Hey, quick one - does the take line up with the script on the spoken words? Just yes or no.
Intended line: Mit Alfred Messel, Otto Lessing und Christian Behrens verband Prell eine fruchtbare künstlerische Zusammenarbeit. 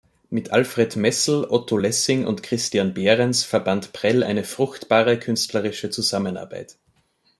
yes